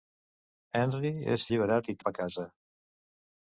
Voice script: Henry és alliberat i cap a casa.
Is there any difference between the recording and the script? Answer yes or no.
no